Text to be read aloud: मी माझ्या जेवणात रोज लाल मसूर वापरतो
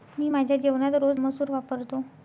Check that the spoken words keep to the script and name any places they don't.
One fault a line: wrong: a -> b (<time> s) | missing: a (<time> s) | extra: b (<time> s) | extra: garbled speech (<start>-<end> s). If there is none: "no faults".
missing: लाल (1.2 s)